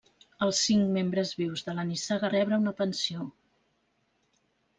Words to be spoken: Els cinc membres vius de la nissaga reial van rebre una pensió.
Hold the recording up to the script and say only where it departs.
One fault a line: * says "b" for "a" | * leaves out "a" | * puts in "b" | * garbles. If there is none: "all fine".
* leaves out "reial van"